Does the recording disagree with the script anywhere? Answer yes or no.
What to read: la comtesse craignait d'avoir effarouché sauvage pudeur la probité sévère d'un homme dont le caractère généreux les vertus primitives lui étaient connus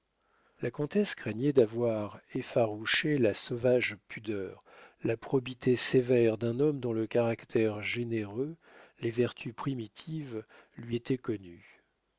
yes